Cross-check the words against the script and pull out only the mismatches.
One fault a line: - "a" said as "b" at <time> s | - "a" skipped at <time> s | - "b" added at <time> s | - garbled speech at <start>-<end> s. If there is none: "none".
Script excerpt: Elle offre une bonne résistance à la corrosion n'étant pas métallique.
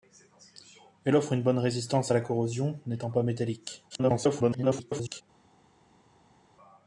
- garbled speech at 3.9-5.2 s